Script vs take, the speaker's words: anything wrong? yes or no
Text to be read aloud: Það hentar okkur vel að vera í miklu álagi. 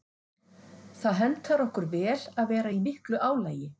no